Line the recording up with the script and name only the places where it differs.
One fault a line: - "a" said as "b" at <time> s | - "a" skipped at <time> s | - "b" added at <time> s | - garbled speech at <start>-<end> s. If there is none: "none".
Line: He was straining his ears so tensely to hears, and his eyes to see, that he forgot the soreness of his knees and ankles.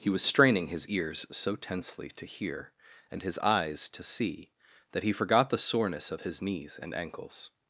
- "hears" said as "hear" at 2.2 s